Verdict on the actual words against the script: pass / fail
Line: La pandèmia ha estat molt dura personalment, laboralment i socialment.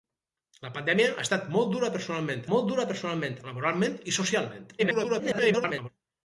fail